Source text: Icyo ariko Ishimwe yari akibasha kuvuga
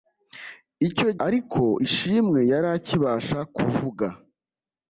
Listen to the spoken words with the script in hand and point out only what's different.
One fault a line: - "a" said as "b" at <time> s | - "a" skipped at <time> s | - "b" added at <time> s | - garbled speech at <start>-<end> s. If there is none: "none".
none